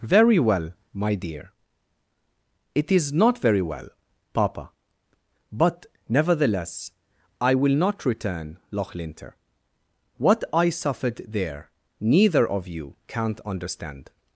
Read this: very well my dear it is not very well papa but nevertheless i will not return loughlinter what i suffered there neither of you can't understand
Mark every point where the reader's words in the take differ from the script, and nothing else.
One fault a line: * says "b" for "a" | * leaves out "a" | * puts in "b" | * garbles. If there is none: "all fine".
all fine